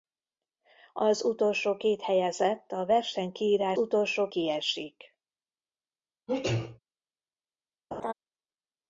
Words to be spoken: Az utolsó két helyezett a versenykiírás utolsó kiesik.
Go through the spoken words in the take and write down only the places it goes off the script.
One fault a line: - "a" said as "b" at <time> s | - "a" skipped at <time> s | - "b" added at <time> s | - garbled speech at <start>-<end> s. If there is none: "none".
none